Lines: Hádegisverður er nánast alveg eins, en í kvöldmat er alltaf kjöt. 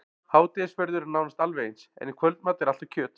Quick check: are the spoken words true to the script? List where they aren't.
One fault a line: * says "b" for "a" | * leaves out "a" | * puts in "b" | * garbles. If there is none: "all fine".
all fine